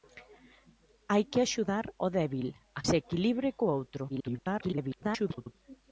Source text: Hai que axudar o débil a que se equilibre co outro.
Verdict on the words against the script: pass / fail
fail